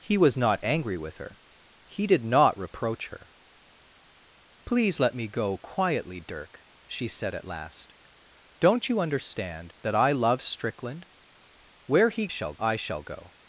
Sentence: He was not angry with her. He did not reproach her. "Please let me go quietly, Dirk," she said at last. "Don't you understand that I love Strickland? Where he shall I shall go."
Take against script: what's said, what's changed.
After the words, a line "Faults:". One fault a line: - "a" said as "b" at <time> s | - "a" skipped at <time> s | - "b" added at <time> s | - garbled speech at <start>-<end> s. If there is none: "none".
He was not angry with her. He did not reproach her. "Please let me go quietly, Dirk," she said at last. "Don't you understand that I love Strickland? Where he shall I shall go."
Faults:
none